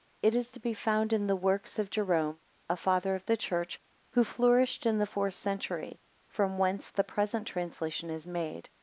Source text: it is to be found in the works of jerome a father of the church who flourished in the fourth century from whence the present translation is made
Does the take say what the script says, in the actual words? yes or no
yes